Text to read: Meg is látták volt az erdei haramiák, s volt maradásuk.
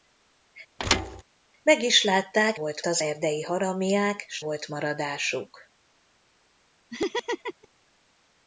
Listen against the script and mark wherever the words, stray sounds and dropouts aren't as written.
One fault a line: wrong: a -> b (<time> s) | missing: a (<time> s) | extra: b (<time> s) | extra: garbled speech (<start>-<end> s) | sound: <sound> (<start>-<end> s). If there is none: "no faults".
sound: thud (0.8-1.2 s)
sound: laugh (6.9-7.7 s)